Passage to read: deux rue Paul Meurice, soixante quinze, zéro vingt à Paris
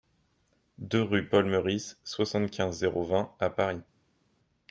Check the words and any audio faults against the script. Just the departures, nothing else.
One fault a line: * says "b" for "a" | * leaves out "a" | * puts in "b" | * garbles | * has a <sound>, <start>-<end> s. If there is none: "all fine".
all fine